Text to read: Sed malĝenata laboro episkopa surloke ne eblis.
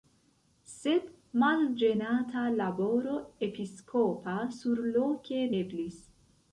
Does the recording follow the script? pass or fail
fail